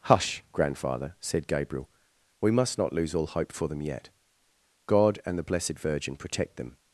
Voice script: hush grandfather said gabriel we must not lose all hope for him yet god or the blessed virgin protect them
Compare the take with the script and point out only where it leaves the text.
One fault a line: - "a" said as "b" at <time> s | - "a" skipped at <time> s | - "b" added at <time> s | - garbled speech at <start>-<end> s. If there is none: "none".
- "him" said as "them" at 3.7 s
- "or" said as "and" at 5.3 s